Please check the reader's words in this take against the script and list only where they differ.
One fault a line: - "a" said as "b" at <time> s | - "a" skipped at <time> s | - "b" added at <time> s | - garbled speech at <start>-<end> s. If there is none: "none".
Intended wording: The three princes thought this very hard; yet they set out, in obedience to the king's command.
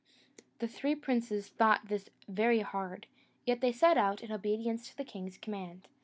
none